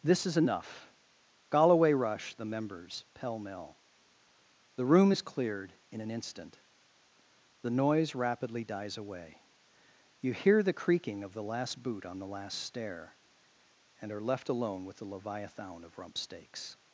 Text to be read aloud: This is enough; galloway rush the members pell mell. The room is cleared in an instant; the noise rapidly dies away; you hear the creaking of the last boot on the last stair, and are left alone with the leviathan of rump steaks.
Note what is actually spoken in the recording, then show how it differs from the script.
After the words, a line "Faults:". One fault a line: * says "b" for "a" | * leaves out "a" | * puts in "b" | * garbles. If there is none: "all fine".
This is enough; galloway rush the members pell mell. The room is cleared in an instant; the noise rapidly dies away; you hear the creaking of the last boot on the last stair, and are left alone with the leviathan of rump steaks.
Faults:
all fine